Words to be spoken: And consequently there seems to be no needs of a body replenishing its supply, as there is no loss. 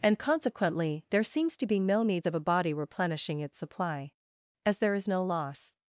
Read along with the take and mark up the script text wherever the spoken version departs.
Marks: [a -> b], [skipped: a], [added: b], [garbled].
And consequently there seems to be no needs of a body replenishing its supply, as there is no loss.